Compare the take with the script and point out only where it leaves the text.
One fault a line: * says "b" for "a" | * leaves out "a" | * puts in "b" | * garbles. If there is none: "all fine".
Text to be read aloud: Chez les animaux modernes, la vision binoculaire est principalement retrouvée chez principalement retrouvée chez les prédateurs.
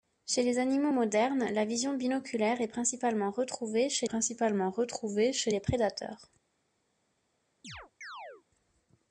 all fine